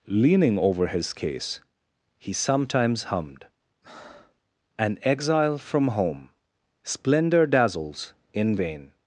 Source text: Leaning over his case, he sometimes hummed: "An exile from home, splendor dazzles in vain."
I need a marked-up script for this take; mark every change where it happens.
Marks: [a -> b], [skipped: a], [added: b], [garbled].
Leaning over his case, he sometimes hummed: "An exile from home, splendor dazzles in vain."